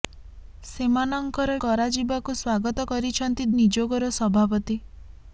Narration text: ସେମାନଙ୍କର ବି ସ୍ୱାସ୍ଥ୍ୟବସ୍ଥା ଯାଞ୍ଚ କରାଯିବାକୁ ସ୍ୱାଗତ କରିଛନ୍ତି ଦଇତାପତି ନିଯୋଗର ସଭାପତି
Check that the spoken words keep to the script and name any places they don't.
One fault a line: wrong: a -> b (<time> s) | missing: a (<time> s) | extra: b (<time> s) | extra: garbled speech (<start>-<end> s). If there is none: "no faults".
missing: ବି ସ୍ୱାସ୍ଥ୍ୟବସ୍ଥା ଯାଞ୍ଚ (1.6 s)
missing: ଦଇତାପତି (3.5 s)